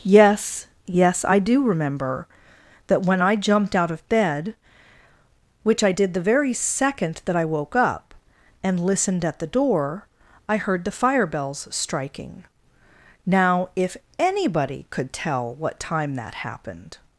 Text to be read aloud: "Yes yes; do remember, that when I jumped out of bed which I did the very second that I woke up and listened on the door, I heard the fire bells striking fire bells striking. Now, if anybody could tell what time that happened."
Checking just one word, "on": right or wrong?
wrong